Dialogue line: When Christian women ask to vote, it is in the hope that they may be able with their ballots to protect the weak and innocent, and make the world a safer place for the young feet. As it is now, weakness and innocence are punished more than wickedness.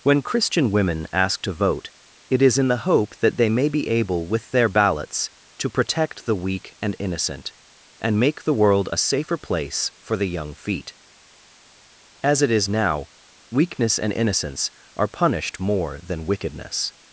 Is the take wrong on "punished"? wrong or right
right